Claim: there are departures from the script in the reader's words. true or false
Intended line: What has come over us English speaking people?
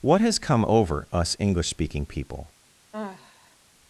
false